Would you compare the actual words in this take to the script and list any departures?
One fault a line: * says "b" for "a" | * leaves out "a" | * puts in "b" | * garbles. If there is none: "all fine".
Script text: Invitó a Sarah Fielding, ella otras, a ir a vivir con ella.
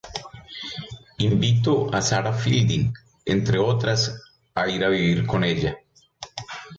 * says "entre" for "ella"